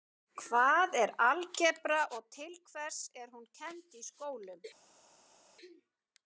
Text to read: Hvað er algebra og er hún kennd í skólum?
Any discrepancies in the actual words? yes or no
yes